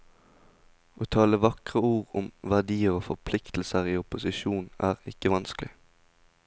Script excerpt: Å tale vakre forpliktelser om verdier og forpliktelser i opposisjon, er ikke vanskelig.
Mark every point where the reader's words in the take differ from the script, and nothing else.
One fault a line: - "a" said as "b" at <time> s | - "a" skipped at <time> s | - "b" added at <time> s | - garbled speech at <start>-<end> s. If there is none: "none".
- "forpliktelser" said as "ord" at 1.9 s